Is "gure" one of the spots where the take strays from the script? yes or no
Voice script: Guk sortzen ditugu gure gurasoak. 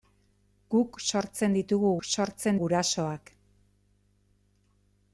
yes